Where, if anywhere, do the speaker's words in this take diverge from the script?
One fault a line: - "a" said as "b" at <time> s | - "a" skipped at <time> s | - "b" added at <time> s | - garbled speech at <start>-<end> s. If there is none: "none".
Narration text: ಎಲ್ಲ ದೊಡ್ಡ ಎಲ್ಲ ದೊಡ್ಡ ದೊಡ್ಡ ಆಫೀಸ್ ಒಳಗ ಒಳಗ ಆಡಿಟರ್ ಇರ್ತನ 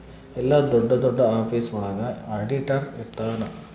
- "ಎಲ್ಲ" skipped at 0.9 s
- "ದೊಡ್ಡ" skipped at 1.2 s
- "ಒಳಗ" skipped at 2.0 s